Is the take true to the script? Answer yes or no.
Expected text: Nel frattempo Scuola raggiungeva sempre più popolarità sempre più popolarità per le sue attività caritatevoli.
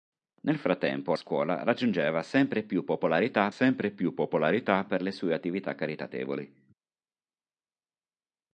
yes